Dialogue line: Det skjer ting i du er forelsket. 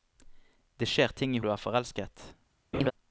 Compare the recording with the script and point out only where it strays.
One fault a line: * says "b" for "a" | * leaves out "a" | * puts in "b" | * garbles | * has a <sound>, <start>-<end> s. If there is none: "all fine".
* has a laugh, 2.7-2.9 s